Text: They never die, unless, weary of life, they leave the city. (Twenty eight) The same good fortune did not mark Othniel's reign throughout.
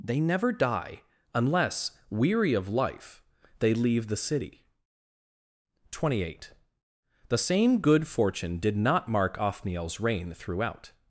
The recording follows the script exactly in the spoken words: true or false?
true